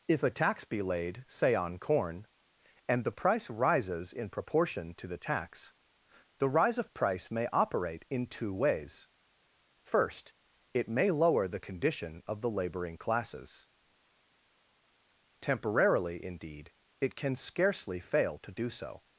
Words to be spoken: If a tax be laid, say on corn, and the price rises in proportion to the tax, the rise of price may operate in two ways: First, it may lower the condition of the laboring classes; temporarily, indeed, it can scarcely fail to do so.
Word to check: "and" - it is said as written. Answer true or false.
true